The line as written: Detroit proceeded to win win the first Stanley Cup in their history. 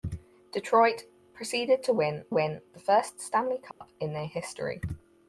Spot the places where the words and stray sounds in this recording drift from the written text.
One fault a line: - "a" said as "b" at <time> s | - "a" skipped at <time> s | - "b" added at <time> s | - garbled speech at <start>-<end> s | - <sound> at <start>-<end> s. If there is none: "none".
- dropout at 3.7-3.8 s